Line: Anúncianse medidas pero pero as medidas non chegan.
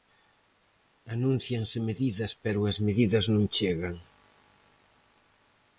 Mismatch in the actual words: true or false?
true